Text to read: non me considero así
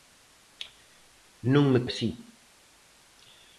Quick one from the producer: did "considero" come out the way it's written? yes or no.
no